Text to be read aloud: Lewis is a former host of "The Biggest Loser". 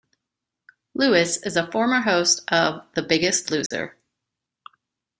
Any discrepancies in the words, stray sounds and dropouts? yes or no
yes